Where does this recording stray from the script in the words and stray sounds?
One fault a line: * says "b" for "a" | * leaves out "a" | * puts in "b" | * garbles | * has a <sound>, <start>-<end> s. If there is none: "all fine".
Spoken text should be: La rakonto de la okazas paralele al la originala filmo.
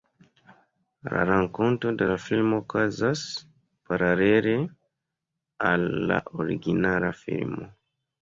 * puts in "filmo"